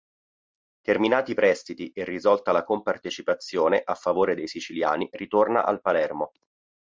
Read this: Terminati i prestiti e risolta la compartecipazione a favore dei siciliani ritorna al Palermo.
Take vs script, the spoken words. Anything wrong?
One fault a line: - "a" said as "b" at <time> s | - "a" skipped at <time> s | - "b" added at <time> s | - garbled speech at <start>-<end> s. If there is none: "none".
none